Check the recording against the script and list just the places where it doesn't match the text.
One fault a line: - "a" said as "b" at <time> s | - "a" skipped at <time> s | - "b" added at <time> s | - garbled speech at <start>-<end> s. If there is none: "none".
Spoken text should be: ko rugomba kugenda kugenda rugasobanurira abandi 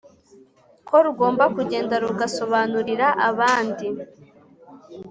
- "kugenda" skipped at 1.9 s